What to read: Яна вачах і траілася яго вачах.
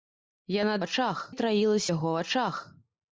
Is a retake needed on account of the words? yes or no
no